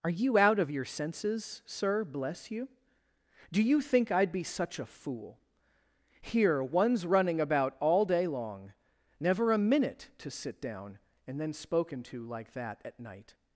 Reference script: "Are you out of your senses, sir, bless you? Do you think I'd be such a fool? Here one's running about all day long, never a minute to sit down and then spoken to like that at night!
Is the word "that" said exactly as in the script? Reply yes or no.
yes